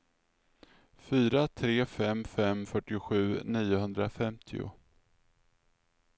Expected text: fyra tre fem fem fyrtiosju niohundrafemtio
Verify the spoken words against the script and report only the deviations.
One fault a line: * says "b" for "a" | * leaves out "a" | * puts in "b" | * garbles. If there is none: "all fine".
all fine